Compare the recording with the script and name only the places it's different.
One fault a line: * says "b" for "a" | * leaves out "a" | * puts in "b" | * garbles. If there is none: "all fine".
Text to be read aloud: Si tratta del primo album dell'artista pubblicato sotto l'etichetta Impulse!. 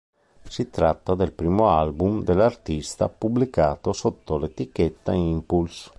all fine